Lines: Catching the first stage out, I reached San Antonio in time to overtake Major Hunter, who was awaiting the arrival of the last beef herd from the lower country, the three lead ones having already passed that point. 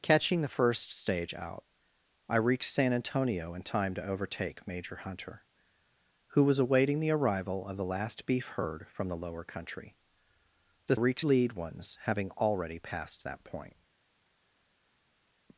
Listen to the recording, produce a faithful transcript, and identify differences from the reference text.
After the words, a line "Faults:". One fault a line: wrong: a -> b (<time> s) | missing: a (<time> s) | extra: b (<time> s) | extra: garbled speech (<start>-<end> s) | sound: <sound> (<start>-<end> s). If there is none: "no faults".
Catching the first stage out, I reached San Antonio in time to overtake Major Hunter, who was awaiting the arrival of the last beef herd from the lower country, the reached lead ones having already passed that point.
Faults:
wrong: three -> reached (10.9 s)